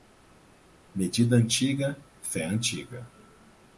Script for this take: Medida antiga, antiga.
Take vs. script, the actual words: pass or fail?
fail